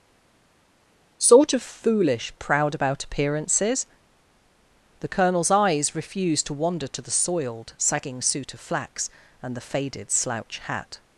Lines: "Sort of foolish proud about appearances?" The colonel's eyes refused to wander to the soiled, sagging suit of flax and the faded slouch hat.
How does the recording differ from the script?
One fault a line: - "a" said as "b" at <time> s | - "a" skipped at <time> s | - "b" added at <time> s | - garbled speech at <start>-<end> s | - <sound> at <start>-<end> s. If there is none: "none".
none